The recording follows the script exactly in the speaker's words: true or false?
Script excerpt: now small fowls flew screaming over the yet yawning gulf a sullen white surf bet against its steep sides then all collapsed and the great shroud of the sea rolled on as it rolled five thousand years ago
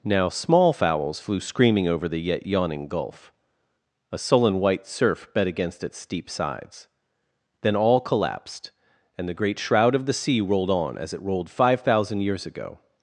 true